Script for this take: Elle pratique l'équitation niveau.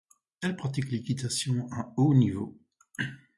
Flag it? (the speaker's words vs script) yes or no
yes